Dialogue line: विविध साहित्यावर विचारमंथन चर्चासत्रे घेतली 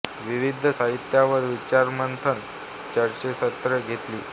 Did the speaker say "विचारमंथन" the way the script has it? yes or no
yes